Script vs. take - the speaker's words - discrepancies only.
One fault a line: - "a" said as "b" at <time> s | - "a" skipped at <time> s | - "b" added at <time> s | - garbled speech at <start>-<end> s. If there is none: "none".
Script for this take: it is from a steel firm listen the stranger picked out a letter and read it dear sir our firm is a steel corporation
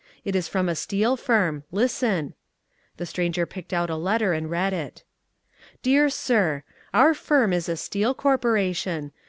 none